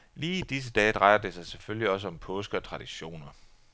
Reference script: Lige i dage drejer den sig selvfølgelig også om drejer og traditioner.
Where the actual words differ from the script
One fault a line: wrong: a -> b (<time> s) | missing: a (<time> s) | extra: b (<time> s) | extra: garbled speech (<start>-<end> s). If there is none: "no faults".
extra: disse (0.4 s)
wrong: den -> det (1.2 s)
wrong: drejer -> påske (2.1 s)